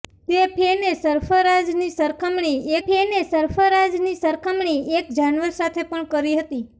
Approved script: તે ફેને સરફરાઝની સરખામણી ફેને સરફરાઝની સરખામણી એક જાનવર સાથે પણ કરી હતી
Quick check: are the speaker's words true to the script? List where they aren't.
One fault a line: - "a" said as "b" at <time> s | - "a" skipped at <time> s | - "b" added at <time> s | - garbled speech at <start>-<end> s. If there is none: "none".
none